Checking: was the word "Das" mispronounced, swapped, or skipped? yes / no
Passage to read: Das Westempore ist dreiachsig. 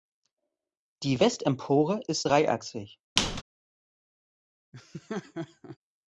yes